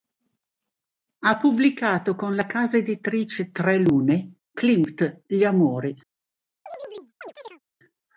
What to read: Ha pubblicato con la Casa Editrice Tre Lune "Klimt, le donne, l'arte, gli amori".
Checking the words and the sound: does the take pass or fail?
fail